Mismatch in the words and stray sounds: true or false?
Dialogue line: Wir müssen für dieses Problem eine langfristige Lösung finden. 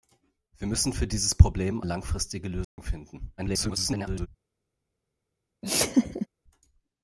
true